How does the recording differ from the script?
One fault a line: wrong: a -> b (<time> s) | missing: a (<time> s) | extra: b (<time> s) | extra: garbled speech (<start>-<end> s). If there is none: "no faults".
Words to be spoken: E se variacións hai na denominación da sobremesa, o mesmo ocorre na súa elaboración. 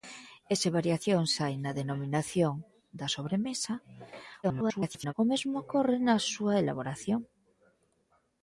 extra: garbled speech (4.4-5.1 s)